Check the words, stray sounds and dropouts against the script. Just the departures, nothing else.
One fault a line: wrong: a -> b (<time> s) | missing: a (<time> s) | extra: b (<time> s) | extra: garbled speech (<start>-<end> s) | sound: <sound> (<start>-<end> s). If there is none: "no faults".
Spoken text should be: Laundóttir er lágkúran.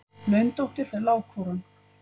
no faults